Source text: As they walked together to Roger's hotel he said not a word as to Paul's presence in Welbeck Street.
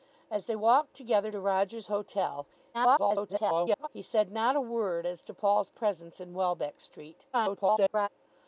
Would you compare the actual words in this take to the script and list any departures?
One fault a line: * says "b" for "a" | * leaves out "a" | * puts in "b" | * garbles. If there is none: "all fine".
* garbles
* garbles